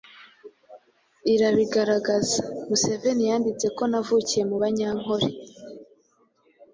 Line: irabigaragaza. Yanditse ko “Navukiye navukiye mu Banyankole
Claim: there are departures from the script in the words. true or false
true